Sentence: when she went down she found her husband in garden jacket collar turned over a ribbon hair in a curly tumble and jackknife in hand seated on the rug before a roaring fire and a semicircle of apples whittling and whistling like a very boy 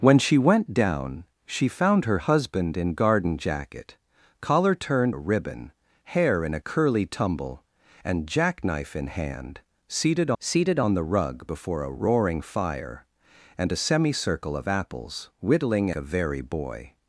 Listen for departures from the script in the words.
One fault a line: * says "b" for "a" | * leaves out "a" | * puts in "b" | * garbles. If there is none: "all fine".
* leaves out "over"
* puts in "seated"
* leaves out "and whistling like"